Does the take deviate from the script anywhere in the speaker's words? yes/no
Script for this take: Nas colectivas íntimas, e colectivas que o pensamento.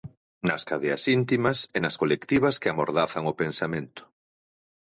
yes